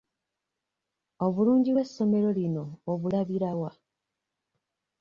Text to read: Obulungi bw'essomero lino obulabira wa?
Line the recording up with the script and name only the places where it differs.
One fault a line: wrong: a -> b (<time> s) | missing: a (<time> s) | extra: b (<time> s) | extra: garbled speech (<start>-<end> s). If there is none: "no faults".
no faults